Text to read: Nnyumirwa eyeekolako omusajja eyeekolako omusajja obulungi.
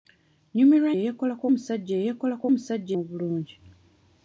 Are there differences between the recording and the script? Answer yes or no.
no